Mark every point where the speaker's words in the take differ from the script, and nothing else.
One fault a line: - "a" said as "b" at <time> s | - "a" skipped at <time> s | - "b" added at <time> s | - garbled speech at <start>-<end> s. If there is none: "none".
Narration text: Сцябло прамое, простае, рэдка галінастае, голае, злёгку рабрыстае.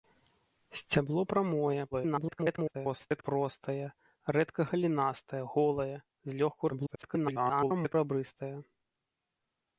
- garbled speech at 1.9-3.2 s
- garbled speech at 6.7-7.9 s